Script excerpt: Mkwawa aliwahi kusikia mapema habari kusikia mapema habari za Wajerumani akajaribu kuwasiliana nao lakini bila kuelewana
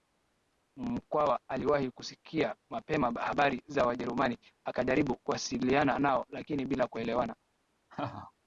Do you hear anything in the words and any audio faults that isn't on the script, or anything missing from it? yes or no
yes